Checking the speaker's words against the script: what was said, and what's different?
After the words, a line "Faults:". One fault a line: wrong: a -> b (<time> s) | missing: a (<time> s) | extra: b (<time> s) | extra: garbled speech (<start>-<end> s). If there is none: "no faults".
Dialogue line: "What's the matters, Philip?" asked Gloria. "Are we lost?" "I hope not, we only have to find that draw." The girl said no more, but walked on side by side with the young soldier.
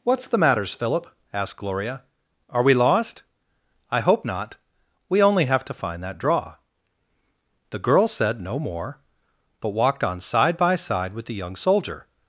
"What's the matters, Philip?" asked Gloria. "Are we lost?" "I hope not, we only have to find that draw." The girl said no more, but walked on side by side with the young soldier.
Faults:
no faults